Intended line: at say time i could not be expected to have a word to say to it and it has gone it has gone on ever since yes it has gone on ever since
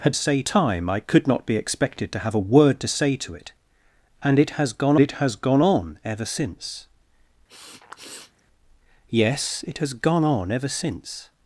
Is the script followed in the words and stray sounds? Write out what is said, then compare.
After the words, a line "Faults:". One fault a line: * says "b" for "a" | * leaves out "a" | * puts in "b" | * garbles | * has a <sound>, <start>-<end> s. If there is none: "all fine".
at say time i could not be expected to have a word to say to it and it has gone it has gone on ever since yes it has gone on ever since
Faults:
* has a sniff, 7.5-8.4 s